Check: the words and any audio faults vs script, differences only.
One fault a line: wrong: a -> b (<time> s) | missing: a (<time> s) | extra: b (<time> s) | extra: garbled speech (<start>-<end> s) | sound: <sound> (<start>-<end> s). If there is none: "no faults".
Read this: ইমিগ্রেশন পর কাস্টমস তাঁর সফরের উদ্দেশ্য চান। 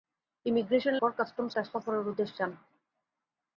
no faults